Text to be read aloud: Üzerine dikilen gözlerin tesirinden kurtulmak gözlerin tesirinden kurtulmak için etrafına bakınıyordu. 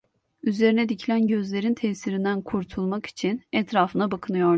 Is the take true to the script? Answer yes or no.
no